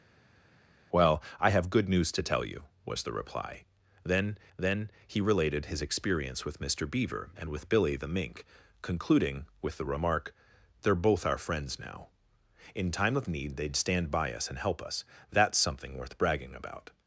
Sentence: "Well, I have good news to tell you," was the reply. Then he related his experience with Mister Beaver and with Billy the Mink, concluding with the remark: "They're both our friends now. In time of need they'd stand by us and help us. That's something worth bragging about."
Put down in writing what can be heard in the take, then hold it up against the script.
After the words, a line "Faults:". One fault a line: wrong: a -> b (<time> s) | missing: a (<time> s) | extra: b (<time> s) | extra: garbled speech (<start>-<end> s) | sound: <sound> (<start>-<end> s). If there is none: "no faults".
"Well, I have good news to tell you," was the reply. Then then he related his experience with Mister Beaver and with Billy the Mink, concluding with the remark: "They're both our friends now. In time of need they'd stand by us and help us. That's something worth bragging about."
Faults:
extra: then (4.6 s)